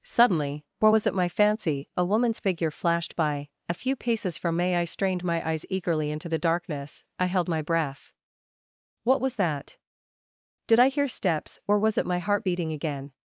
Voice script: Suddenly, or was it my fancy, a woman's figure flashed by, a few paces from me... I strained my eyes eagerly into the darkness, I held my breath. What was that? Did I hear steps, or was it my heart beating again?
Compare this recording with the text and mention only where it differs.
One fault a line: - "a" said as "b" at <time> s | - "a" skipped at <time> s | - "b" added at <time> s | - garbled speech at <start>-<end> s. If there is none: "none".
none